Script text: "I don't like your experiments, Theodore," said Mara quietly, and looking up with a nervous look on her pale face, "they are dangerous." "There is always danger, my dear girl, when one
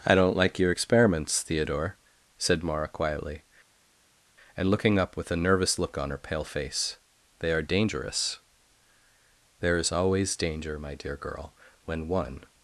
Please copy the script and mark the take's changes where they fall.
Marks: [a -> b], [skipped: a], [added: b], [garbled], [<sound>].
"I don't like your experiments, Theodore," said Mara quietly, and looking up with a nervous look on her pale face, "they are dangerous." "There is always danger, my dear girl, when one